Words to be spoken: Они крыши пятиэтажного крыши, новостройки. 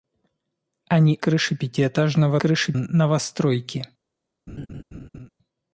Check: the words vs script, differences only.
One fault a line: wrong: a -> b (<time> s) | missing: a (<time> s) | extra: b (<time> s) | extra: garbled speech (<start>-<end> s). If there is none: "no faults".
no faults